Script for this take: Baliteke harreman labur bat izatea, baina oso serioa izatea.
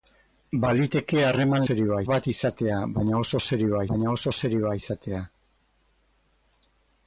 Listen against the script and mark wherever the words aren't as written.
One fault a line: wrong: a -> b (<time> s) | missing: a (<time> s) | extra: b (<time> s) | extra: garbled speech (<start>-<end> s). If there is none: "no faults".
wrong: labur -> serioa (1.7 s)
extra: baina oso serioa (3.9 s)